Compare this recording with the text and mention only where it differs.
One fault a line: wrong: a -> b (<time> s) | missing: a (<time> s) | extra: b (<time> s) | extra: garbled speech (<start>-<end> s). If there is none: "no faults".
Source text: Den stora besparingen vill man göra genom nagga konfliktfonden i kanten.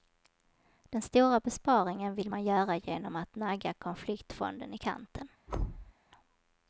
extra: att (3.1 s)